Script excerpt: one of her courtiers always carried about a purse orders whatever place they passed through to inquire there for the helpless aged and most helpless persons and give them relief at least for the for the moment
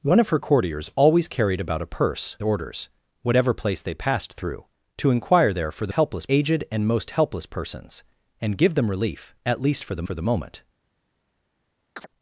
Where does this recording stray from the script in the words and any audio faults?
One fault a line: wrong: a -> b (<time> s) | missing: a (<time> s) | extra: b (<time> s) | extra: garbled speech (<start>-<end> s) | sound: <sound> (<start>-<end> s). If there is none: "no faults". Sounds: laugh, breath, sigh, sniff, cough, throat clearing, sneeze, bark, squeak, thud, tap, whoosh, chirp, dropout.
sound: chirp (12.0-12.1 s)